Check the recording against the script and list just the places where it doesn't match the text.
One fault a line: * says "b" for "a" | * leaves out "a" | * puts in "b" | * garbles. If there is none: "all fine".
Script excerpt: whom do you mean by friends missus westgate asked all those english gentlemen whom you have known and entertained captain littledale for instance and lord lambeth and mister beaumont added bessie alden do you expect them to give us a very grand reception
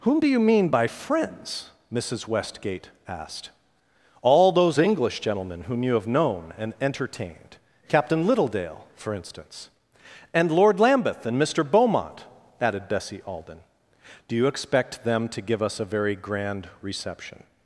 all fine